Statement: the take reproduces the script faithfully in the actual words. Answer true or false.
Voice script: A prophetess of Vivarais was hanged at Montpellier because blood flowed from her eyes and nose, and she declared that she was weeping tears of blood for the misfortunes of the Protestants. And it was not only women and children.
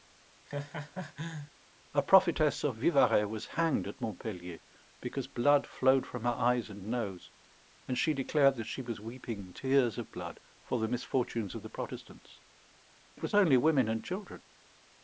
false